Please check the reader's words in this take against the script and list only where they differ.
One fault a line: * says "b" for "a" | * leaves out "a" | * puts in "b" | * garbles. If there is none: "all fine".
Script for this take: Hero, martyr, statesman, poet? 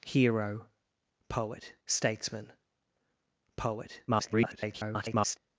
* says "poet" for "martyr"
* garbles